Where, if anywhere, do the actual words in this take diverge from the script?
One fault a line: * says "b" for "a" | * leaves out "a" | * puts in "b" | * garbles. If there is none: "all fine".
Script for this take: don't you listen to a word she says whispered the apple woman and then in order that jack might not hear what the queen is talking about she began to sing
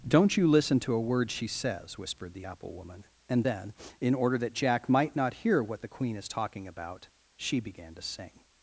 all fine